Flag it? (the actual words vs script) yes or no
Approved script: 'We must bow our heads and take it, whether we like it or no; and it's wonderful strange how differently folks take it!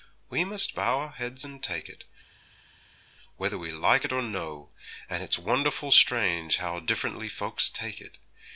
no